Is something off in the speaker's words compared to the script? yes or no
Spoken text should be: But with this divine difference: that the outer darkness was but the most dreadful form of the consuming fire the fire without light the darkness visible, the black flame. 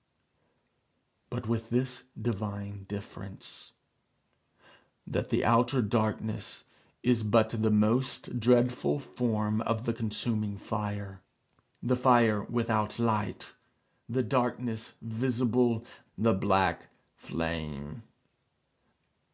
yes